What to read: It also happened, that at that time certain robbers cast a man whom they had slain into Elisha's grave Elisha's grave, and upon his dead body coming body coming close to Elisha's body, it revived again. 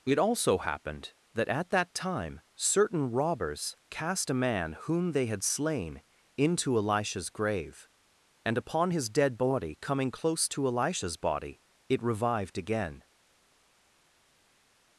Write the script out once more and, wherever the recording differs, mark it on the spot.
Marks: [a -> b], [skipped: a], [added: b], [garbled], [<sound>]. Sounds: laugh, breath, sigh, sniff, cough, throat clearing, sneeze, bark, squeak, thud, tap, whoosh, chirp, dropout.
It also happened, that at that time certain robbers cast a man whom they had slain into Elisha's grave [skipped: Elisha's grave,] and upon his dead body coming [skipped: body coming] close to Elisha's body, it revived again.